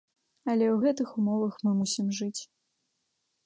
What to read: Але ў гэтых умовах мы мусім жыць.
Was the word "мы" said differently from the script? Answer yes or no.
no